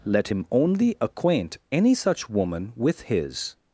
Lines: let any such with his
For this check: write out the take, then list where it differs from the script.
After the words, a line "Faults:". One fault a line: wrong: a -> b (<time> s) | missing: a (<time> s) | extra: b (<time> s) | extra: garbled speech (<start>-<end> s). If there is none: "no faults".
let him only acquaint any such woman with his
Faults:
extra: him only acquaint (0.3 s)
extra: woman (2.3 s)